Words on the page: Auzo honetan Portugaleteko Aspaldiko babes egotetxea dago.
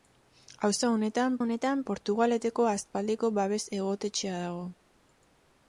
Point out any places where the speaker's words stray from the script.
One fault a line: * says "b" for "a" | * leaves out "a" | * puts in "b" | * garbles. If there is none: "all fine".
* puts in "honetan"